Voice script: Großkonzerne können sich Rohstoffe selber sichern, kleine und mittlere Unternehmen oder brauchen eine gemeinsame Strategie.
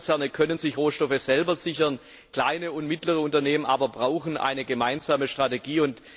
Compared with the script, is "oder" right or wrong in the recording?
wrong